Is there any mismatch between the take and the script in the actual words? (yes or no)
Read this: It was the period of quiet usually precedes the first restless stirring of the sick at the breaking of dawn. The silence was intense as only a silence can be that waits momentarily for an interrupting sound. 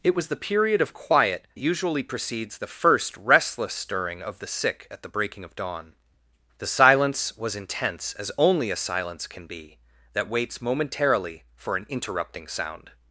no